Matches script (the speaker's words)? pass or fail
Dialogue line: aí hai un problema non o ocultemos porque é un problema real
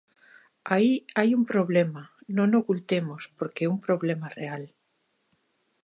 pass